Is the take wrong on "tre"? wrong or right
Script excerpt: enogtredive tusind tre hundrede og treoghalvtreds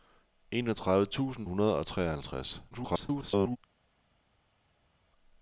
wrong